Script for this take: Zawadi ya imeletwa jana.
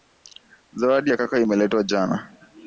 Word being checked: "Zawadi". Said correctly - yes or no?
yes